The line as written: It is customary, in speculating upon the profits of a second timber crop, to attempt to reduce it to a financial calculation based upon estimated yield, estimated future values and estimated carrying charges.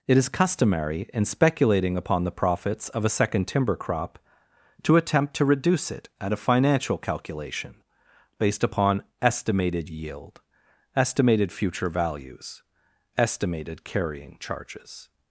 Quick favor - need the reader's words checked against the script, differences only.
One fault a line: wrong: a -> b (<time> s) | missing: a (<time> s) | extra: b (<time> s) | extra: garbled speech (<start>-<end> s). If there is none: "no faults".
wrong: to -> at (6.2 s)
missing: and (12.6 s)